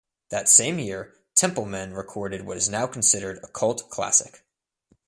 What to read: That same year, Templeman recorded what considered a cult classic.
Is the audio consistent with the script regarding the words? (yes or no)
no